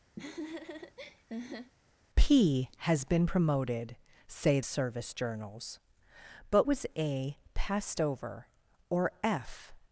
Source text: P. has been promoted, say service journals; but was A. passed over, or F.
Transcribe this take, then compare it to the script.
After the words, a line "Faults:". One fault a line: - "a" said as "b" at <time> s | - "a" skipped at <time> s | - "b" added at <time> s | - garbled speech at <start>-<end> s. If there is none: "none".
P. has been promoted, say service journals; but was A. passed over, or F.
Faults:
none